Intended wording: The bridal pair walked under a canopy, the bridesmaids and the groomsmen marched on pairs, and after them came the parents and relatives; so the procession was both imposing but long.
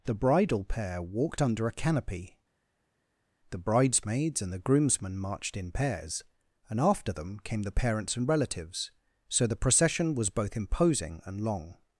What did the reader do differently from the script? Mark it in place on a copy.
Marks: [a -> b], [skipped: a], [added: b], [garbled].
The bridal pair walked under a canopy, the bridesmaids and the groomsmen marched [on -> in] pairs, and after them came the parents and relatives; so the procession was both imposing [but -> and] long.